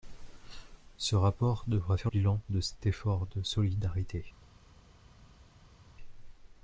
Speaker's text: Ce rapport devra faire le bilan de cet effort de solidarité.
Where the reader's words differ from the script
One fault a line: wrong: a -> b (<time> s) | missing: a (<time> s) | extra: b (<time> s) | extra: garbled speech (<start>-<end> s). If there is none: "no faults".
missing: le (2.1 s)